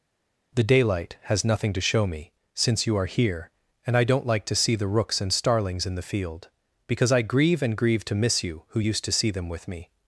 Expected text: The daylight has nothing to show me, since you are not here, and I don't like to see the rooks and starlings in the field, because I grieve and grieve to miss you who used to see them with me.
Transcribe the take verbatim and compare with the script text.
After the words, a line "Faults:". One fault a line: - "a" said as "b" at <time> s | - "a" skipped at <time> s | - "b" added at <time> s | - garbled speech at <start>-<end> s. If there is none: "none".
The daylight has nothing to show me, since you are here, and I don't like to see the rooks and starlings in the field, because I grieve and grieve to miss you who used to see them with me.
Faults:
- "not" skipped at 3.1 s